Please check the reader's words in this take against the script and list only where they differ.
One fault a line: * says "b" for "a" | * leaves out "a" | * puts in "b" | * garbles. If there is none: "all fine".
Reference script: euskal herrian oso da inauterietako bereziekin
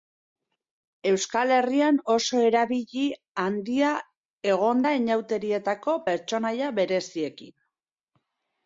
* puts in "erabili handia egon"
* puts in "pertsonaia"